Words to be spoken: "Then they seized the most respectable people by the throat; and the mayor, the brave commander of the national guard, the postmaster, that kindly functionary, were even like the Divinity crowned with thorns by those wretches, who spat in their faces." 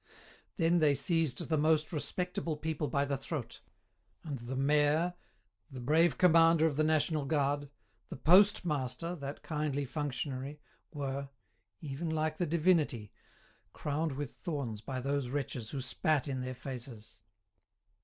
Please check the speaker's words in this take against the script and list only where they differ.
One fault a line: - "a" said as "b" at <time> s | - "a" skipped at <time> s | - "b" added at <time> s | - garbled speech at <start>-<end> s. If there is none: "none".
none